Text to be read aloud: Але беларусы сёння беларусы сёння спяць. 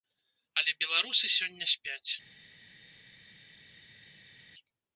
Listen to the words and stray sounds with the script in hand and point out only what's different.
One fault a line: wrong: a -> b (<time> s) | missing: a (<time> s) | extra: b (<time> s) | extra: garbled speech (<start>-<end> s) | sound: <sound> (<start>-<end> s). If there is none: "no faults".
missing: беларусы сёння (1.6 s)